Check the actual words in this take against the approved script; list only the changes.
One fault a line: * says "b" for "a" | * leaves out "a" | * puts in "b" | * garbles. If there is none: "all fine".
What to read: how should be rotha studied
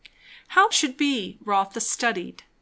all fine